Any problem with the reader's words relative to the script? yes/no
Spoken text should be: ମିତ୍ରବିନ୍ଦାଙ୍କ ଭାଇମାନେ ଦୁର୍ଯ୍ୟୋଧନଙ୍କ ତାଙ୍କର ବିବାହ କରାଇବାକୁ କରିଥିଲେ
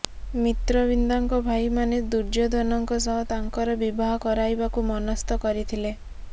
yes